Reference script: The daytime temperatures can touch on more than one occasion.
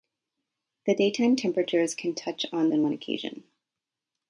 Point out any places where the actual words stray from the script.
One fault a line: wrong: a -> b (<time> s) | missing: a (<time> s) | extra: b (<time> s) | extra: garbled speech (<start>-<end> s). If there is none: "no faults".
missing: more (2.7 s)